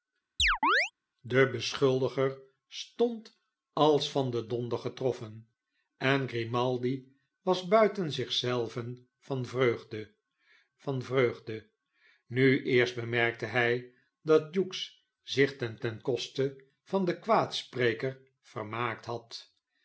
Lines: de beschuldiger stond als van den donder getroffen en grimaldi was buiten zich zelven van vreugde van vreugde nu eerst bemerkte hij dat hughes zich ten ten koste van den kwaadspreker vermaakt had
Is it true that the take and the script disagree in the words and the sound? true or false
true